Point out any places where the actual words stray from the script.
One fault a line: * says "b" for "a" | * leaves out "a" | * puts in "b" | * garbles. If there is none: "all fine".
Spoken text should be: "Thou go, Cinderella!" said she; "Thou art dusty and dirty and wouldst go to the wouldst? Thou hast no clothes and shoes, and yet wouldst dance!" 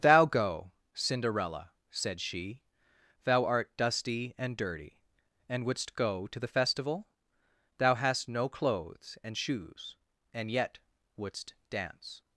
* says "festival" for "wouldst"